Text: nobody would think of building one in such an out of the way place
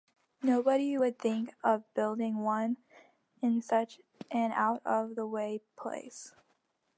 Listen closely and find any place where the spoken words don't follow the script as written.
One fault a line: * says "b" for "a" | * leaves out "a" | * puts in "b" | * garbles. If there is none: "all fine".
all fine